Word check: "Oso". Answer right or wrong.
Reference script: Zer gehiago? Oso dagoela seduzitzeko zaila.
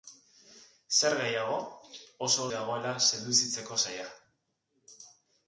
right